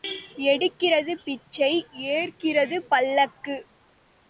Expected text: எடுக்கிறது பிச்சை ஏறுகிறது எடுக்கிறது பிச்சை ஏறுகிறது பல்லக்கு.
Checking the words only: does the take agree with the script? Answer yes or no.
no